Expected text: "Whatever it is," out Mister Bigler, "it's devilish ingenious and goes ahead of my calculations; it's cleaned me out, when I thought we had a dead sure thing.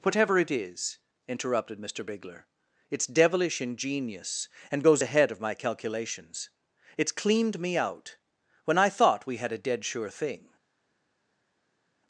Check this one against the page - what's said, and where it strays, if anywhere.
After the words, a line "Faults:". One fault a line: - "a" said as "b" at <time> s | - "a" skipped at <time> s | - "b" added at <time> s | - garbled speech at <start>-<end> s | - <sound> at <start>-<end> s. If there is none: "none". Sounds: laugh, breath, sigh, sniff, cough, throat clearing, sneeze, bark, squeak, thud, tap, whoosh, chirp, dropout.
"Whatever it is," interrupted Mister Bigler, "it's devilish ingenious and goes ahead of my calculations; it's cleaned me out, when I thought we had a dead sure thing.
Faults:
- "out" said as "interrupted" at 1.3 s